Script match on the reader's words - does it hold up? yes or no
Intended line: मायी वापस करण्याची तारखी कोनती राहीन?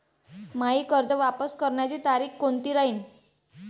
no